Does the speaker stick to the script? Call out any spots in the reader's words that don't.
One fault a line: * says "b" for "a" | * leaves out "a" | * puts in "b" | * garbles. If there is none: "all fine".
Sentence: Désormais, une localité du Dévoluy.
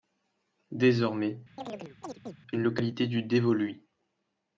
all fine